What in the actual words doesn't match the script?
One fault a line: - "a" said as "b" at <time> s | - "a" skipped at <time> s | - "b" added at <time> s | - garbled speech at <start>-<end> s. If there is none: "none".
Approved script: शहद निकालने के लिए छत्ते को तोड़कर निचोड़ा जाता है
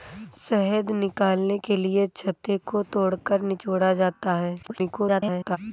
- garbled speech at 4.6-5.6 s